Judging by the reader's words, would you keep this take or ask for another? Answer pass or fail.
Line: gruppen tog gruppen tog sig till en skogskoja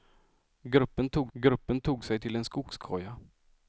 pass